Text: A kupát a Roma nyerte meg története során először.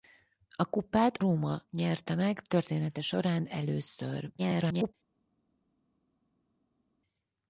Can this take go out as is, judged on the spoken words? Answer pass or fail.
fail